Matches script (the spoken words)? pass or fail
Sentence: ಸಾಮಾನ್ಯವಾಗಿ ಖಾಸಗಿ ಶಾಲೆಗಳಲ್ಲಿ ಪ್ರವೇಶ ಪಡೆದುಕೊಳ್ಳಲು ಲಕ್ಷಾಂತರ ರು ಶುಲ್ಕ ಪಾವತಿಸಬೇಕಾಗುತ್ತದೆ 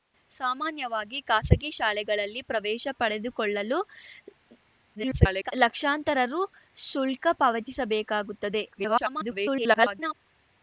fail